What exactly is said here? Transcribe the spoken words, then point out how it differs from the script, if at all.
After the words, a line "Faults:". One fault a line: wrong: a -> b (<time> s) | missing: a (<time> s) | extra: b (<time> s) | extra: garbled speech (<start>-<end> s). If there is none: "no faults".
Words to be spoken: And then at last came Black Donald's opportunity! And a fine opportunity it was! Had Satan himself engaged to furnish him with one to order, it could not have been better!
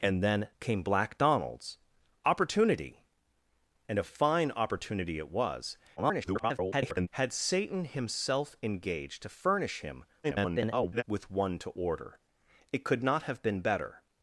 And then came Black Donald's opportunity! And a fine opportunity it was! [garbled] Had Satan himself engaged to furnish him [garbled] with one to order, it could not have been better!
Faults:
missing: at last (0.5 s)
extra: garbled speech (6.0-7.1 s)
extra: garbled speech (10.2-11.0 s)